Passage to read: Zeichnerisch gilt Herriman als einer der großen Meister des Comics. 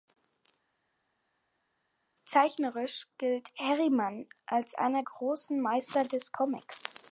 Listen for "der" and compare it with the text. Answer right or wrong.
wrong